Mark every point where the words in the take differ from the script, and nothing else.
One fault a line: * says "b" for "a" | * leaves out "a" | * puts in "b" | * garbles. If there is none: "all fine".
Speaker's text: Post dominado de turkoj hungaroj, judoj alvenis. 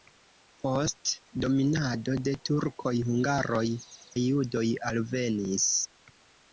all fine